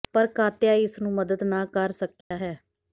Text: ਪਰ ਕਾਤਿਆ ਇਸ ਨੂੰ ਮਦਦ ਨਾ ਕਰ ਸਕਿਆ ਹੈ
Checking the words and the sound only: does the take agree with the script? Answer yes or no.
no